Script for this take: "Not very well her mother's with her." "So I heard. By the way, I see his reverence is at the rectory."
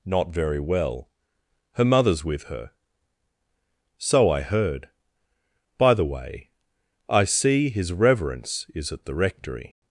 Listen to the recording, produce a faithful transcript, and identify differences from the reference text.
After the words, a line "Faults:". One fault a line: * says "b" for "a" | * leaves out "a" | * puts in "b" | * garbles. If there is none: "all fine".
"Not very well her mother's with her." "So I heard. By the way, I see his reverence is at the rectory."
Faults:
all fine